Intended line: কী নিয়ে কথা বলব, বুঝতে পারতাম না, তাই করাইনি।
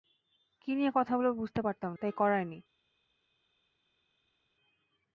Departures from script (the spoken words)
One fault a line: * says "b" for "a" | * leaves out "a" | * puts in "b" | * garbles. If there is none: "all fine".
* leaves out "না"